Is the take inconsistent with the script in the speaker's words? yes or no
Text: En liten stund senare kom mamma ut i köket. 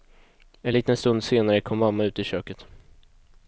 no